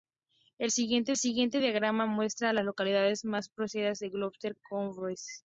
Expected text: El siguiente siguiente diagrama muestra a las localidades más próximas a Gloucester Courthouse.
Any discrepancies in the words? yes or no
no